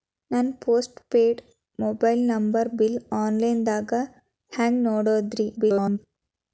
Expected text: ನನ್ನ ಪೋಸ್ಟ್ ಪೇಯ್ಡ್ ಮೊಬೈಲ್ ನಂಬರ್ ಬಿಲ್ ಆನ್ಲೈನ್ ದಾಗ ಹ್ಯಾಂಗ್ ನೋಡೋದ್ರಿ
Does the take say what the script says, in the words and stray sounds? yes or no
no